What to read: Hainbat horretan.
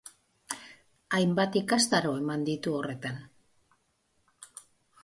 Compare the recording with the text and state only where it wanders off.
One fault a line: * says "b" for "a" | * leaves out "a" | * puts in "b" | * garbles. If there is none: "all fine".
* puts in "ikastaro eman ditu"